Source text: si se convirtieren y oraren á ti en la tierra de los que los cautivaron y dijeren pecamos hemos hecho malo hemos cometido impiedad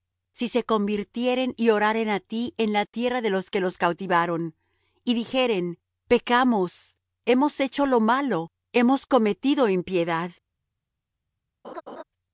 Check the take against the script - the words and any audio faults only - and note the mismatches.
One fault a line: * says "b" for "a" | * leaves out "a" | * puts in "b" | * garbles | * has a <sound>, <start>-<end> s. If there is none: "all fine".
* puts in "lo"
* has a laugh, 11.6-12.0 s